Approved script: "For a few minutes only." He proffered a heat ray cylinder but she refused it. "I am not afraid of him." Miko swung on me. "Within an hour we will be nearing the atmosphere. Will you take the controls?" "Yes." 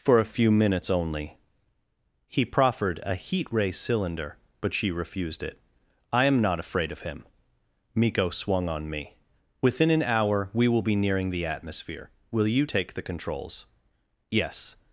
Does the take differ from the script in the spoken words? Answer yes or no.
no